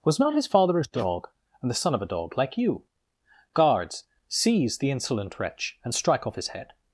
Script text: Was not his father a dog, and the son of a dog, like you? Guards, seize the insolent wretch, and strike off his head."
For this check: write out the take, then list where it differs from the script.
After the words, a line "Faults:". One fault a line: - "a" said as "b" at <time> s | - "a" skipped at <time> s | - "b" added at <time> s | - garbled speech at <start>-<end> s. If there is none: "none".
Was not his father a dog, and the son of a dog, like you? Guards, seize the insolent wretch, and strike off his head."
Faults:
none